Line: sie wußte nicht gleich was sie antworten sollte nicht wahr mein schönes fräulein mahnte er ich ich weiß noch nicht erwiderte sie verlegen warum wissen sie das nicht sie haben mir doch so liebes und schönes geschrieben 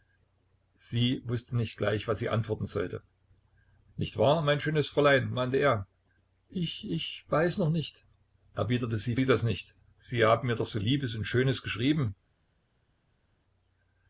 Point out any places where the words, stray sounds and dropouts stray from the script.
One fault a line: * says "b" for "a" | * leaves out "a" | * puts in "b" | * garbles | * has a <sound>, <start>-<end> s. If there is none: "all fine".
* leaves out "verlegen warum wissen"